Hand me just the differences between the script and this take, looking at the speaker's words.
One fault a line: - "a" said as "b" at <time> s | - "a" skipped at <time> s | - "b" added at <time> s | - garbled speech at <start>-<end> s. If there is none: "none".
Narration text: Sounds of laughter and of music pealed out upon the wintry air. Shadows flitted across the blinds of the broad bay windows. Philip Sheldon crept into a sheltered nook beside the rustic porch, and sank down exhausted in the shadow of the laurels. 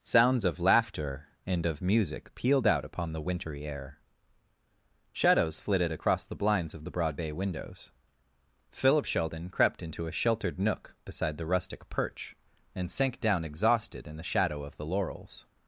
- "porch" said as "perch" at 11.9 s